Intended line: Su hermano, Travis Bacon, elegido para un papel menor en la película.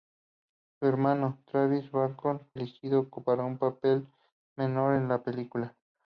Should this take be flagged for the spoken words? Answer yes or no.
no